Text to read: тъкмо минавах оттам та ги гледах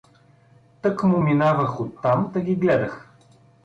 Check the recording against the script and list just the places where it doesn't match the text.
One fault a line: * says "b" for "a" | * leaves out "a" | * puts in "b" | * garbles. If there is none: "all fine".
all fine